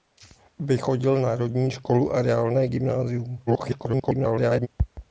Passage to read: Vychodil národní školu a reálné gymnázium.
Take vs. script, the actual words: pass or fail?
fail